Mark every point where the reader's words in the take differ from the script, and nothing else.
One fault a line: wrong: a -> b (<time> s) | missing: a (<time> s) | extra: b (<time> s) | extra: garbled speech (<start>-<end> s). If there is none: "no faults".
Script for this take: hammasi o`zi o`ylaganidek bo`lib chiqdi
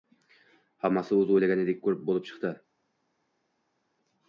no faults